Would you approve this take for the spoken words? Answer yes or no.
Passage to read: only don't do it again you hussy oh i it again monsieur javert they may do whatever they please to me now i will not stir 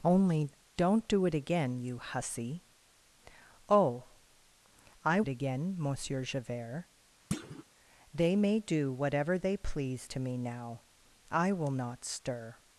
yes